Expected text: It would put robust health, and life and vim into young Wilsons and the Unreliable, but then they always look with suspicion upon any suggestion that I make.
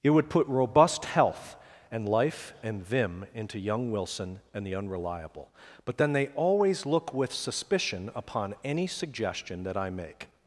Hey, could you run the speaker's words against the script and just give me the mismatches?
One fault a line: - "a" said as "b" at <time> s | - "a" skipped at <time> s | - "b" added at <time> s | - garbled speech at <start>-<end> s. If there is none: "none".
- "Wilsons" said as "Wilson" at 3.9 s